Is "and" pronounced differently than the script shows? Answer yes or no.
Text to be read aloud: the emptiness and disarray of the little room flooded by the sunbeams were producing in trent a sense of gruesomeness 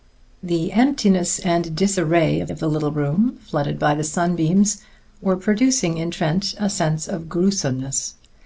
no